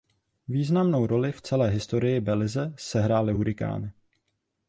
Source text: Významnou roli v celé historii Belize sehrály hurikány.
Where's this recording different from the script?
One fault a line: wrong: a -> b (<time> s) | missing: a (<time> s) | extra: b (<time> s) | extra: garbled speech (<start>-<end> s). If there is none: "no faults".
no faults